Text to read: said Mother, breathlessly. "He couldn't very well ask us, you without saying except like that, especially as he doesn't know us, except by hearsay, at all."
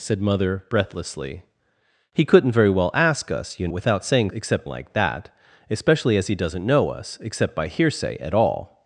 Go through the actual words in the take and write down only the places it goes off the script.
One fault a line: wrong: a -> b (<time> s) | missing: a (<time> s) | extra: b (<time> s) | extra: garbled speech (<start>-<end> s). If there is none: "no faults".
no faults